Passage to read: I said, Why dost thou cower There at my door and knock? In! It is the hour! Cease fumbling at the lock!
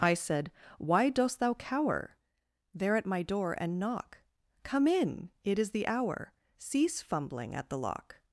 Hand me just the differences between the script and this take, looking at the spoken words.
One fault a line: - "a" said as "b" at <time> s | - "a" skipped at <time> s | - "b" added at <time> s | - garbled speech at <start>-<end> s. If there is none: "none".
- "Come" added at 4.6 s